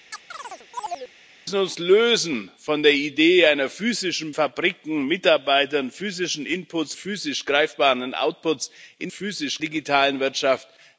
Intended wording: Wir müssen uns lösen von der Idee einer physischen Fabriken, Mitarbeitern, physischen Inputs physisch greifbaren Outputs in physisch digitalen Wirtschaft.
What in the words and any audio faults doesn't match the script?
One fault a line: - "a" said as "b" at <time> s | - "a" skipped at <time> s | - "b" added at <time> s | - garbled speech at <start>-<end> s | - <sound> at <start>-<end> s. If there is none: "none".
- chirp at 0.1-1.1 s